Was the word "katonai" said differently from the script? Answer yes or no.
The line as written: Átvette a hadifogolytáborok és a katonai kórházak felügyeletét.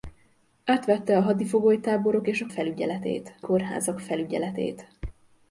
yes